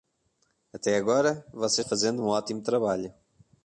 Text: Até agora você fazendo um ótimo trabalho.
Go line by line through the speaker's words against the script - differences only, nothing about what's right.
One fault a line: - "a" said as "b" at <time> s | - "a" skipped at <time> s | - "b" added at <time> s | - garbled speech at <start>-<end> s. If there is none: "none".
none